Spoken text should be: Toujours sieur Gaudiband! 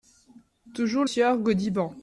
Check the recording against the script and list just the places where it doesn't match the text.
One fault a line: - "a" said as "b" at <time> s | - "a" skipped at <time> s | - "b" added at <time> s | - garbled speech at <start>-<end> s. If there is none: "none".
none